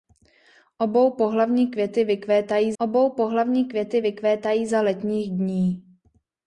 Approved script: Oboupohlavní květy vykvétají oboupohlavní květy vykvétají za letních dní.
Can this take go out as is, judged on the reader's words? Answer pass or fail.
pass